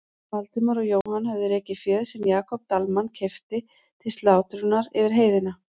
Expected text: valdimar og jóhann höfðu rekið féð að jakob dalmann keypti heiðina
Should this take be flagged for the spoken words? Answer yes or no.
yes